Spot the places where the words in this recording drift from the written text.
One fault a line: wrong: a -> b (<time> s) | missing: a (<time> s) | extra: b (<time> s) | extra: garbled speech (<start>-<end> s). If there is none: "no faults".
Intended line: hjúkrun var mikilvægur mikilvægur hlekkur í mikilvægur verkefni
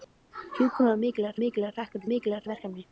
no faults